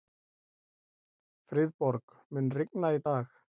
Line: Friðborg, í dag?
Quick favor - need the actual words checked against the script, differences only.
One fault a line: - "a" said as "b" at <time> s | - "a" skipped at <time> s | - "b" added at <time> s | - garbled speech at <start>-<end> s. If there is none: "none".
- "mun rigna" added at 2.4 s